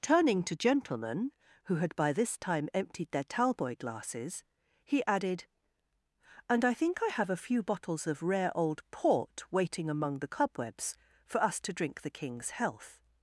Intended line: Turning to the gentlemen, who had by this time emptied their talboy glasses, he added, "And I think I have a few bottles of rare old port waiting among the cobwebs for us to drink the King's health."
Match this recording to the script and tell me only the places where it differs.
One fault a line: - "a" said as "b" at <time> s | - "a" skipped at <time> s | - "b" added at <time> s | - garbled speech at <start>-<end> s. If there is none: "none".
- "the" skipped at 0.6 s